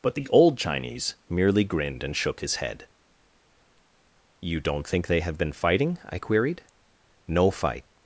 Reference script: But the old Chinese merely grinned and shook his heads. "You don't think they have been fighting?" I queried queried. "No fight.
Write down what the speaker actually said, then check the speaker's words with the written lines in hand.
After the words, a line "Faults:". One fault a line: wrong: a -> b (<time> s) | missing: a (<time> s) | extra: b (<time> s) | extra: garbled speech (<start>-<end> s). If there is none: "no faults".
But the old Chinese merely grinned and shook his head. "You don't think they have been fighting?" I queried. "No fight.
Faults:
wrong: heads -> head (2.5 s)
missing: queried (6.6 s)